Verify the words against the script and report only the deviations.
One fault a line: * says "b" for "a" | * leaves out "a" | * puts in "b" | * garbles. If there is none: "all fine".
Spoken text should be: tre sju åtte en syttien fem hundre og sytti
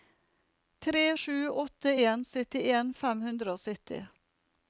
all fine